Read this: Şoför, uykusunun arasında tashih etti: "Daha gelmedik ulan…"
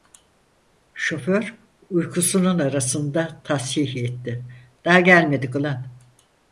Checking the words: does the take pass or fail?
pass